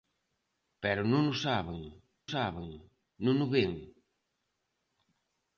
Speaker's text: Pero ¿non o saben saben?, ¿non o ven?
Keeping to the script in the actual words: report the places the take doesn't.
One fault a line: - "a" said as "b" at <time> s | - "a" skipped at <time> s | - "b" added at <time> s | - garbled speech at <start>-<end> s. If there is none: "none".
none